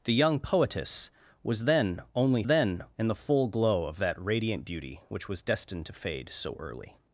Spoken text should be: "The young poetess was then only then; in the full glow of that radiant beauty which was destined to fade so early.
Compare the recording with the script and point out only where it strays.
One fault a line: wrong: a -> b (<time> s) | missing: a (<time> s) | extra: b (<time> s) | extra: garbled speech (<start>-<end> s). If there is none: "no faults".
no faults